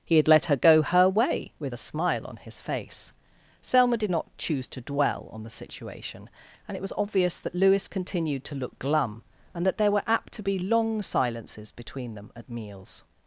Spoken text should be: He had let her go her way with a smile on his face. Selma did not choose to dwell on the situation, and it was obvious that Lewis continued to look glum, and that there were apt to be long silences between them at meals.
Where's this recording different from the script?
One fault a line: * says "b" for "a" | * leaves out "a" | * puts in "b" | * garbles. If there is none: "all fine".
all fine